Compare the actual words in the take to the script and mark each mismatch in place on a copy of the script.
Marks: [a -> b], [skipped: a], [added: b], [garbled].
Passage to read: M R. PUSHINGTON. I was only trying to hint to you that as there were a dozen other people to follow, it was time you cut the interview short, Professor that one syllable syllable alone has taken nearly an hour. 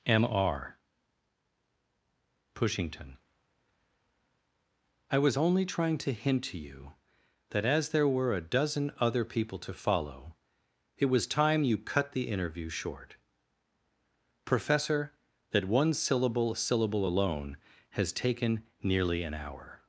M R. PUSHINGTON. I was only trying to hint to you that as there were a dozen other people to follow, it was time you cut the interview short, Professor that one syllable syllable alone has taken nearly an hour.